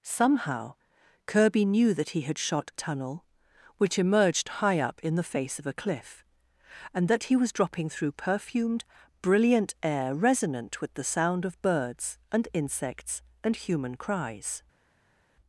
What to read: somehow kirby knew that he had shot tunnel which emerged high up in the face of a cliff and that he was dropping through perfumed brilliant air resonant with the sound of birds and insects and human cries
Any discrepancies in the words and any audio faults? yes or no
no